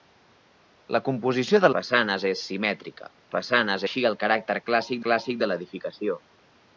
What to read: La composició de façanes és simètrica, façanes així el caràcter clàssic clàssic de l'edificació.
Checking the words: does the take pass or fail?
pass